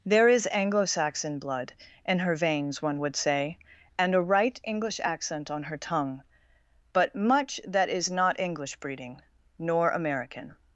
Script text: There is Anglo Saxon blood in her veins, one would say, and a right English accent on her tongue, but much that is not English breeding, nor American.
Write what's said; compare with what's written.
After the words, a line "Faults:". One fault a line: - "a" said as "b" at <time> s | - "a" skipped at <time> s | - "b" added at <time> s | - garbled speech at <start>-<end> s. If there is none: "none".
There is Anglo Saxon blood in her veins, one would say, and a right English accent on her tongue, but much that is not English breeding, nor American.
Faults:
none